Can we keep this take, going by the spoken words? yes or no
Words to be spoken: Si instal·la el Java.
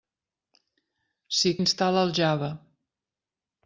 yes